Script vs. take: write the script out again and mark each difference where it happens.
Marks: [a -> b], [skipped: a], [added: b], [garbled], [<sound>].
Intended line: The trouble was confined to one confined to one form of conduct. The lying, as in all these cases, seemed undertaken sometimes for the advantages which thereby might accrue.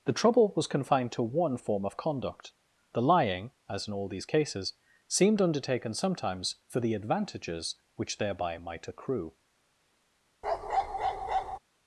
The trouble was confined to one [skipped: confined to one] form of conduct. The lying, as in all these cases, seemed undertaken sometimes for the advantages which thereby might accrue. [bark]